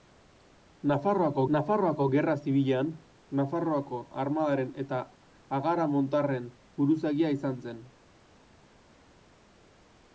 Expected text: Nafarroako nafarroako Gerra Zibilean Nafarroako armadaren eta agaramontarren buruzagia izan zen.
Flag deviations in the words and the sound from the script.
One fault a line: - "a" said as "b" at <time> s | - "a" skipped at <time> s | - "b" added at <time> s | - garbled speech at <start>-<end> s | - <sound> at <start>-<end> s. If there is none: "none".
none